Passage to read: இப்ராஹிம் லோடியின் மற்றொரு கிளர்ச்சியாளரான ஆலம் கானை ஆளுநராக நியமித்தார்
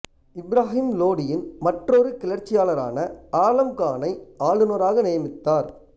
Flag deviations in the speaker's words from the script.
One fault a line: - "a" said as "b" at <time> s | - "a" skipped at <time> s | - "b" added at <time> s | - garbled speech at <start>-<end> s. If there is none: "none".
none